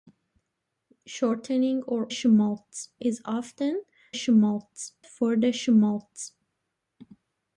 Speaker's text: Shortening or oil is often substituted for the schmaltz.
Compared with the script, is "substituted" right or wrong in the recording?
wrong